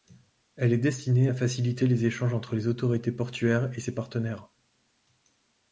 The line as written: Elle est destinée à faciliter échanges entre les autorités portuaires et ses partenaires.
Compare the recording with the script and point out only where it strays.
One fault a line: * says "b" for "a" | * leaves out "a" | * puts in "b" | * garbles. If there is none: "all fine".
* puts in "les"